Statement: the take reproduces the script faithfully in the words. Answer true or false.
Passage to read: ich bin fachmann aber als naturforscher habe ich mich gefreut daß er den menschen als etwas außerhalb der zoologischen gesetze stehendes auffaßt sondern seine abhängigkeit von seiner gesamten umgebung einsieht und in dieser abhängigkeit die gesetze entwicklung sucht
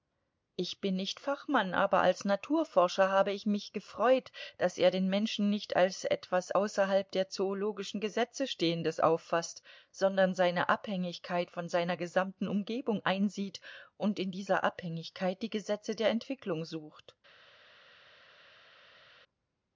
false